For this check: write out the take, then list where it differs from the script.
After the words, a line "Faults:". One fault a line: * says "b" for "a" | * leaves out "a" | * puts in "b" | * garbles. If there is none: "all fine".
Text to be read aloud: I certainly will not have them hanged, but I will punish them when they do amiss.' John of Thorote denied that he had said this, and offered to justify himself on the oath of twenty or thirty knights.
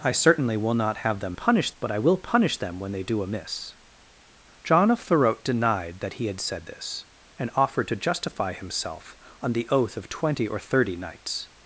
I certainly will not have them punish, but I will punish them when they do amiss.' John of Thorote denied that he had said this, and offered to justify himself on the oath of twenty or thirty knights.
Faults:
* says "punish" for "hanged"